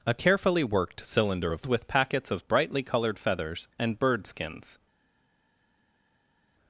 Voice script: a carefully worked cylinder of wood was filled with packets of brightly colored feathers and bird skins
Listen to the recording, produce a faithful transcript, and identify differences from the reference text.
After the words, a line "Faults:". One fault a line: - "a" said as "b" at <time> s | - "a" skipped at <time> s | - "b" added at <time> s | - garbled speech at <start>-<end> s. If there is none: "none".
a carefully worked cylinder of with packets of brightly colored feathers and bird skins
Faults:
- "wood was filled" skipped at 1.7 s